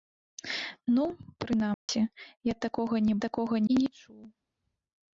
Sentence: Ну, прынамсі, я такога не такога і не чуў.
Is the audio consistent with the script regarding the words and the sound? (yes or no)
no